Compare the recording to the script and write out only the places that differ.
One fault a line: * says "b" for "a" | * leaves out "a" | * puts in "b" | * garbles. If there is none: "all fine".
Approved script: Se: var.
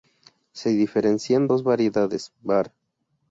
* puts in "diferencian dos variedades"